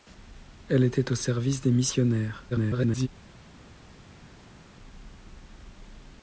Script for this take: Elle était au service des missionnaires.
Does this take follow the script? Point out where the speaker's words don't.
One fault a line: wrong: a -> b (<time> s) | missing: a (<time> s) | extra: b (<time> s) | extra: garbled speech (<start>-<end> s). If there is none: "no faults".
extra: garbled speech (2.5-3.1 s)